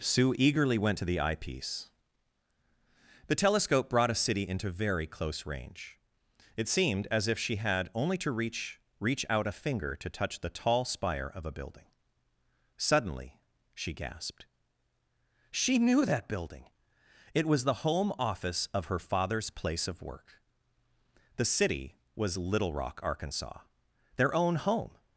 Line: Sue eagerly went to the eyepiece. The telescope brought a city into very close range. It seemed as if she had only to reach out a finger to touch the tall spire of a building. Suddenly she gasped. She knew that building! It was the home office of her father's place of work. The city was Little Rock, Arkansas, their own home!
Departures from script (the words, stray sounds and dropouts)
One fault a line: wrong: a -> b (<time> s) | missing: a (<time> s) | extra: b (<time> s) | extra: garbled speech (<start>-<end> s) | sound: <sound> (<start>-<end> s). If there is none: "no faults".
extra: reach (9.0 s)